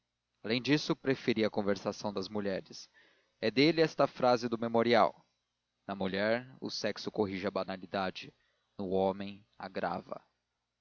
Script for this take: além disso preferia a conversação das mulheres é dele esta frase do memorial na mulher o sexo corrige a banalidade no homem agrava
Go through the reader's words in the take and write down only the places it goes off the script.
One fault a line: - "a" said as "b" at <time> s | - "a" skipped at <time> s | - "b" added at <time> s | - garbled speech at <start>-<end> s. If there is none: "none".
none